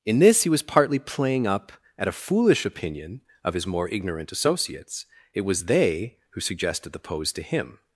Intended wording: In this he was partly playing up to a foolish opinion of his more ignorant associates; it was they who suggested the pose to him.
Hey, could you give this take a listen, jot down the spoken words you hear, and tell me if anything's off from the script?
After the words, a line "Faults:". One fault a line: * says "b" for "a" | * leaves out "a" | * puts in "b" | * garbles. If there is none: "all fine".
In this he was partly playing up at a foolish opinion of his more ignorant associates; it was they who suggested the pose to him.
Faults:
* says "at" for "to"